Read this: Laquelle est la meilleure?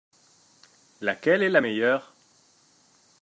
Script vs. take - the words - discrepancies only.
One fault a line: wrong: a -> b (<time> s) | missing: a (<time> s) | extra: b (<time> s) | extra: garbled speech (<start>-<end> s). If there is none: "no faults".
no faults